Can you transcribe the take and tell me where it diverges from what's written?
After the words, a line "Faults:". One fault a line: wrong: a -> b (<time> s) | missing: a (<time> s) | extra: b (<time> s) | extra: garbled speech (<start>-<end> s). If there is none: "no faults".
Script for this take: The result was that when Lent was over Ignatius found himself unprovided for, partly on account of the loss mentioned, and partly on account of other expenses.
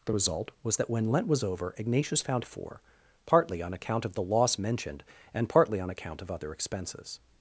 The result was that when Lent was over Ignatius found for, partly on account of the loss mentioned, and partly on account of other expenses.
Faults:
missing: himself unprovided (2.4 s)